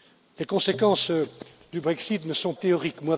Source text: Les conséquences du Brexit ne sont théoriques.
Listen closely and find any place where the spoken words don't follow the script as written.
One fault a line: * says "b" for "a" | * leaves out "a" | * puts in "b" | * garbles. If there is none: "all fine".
all fine